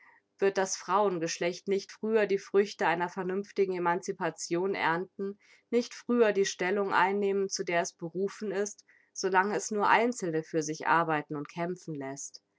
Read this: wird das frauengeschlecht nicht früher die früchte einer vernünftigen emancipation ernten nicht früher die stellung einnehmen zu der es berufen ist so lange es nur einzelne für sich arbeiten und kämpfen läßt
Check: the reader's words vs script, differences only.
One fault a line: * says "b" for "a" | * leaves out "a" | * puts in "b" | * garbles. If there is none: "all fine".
all fine